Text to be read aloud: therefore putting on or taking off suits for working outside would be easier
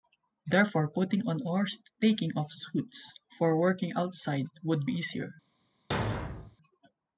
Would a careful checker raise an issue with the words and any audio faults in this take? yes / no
yes